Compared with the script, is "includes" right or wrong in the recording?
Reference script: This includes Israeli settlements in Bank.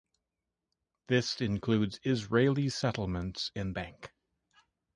right